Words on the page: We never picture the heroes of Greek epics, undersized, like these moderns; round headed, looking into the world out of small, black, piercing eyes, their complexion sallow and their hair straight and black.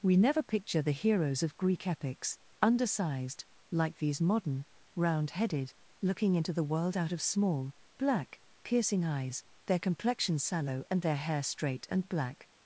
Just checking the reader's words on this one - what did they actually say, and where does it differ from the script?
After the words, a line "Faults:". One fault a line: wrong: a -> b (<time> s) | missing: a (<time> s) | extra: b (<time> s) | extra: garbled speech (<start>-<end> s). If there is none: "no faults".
We never picture the heroes of Greek epics, undersized, like these modern; round headed, looking into the world out of small, black, piercing eyes, their complexion sallow and their hair straight and black.
Faults:
wrong: moderns -> modern (4.2 s)